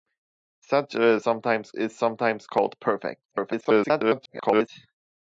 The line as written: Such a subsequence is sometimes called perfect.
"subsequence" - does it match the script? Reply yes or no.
no